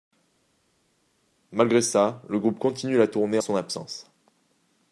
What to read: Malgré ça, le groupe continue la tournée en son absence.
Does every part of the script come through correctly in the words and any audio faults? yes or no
no